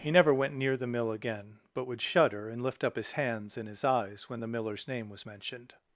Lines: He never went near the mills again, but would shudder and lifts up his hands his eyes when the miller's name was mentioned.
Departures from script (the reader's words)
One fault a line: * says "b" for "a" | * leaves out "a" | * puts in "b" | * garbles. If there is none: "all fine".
* says "mill" for "mills"
* says "lift" for "lifts"
* puts in "and"